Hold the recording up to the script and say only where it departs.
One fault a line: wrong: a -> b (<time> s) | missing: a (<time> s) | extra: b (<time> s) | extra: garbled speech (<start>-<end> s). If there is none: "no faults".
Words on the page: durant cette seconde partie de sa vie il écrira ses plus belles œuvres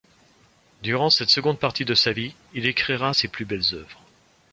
no faults